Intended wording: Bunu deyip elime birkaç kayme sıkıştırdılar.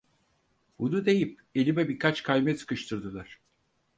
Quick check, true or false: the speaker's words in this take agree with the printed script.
true